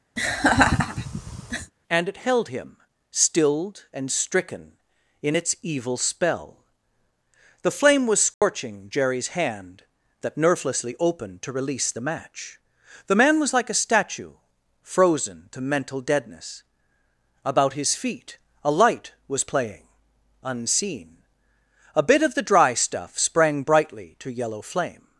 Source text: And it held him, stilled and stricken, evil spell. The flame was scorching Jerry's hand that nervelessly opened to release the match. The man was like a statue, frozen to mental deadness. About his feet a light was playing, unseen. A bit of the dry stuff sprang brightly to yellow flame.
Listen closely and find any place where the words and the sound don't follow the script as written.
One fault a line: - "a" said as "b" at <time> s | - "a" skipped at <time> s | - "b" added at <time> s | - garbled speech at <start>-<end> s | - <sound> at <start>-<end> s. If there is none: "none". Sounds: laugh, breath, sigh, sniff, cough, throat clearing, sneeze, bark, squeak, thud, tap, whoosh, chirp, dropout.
- laugh at 0.2-1.7 s
- "in its" added at 5.2 s
- dropout at 8.3-8.4 s